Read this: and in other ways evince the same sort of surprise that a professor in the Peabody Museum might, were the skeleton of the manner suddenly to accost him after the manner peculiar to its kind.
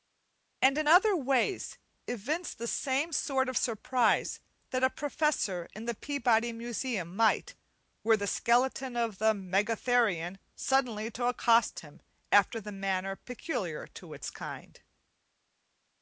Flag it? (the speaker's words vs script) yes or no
yes